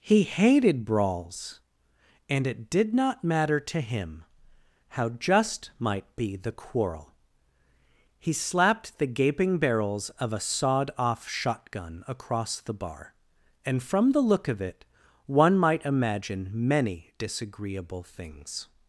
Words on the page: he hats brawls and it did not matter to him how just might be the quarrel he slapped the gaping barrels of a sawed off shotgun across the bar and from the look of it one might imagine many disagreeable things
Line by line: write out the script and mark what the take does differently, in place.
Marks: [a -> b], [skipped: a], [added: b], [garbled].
he [hats -> hated] brawls and it did not matter to him how just might be the quarrel he slapped the gaping barrels of a sawed off shotgun across the bar and from the look of it one might imagine many disagreeable things